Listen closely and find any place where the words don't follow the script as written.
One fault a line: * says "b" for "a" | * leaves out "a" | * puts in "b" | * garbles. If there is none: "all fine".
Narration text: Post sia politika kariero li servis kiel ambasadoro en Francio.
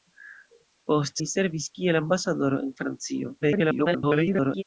* leaves out "sia politika kariero"
* garbles